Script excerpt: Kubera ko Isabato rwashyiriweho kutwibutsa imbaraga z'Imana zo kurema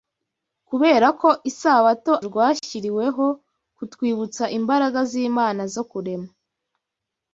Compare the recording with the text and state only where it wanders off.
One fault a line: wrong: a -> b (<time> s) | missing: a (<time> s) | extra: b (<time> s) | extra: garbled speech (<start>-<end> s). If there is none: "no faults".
no faults